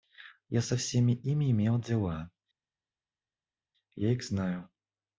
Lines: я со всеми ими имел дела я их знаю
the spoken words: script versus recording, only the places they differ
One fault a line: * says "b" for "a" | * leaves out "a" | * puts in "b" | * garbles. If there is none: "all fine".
all fine